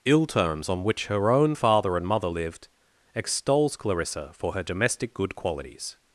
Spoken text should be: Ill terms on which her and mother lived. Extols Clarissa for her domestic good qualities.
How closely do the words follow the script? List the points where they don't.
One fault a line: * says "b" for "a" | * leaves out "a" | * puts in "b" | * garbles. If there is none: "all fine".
* puts in "own father"